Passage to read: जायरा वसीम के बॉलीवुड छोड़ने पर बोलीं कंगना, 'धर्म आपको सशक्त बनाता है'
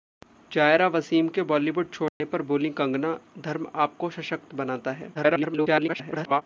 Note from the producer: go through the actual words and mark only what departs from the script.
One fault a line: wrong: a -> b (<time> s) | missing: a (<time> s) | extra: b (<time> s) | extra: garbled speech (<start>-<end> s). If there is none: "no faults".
extra: garbled speech (5.1-6.4 s)